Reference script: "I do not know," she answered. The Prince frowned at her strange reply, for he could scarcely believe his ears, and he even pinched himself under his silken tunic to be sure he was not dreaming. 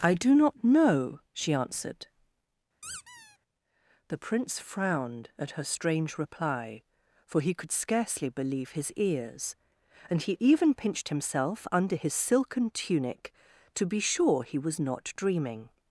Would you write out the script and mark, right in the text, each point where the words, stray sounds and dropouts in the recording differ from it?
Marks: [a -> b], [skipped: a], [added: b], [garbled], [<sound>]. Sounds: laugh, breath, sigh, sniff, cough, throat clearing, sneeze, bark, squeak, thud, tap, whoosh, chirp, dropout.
"I do not know," she answered. [squeak] The Prince frowned at her strange reply, for he could scarcely believe his ears, and he even pinched himself under his silken tunic to be sure he was not dreaming.